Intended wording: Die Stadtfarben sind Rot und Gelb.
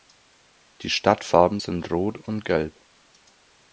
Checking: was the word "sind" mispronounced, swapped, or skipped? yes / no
no